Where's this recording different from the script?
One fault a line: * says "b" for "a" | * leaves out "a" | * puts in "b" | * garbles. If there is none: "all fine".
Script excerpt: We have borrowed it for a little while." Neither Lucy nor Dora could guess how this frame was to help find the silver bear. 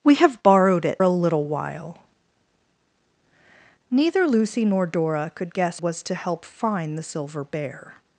* leaves out "for"
* leaves out "how this frame"